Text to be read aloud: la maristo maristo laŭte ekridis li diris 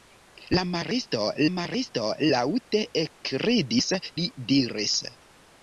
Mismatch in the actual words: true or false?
false